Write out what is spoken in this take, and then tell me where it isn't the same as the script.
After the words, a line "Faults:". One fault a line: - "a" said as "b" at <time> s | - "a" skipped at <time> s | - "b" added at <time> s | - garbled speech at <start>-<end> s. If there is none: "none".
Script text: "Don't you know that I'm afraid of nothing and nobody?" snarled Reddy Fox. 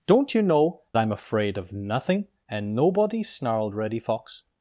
"Don't you know I'm afraid of nothing and nobody?" snarled Reddy Fox.
Faults:
- "that" skipped at 0.8 s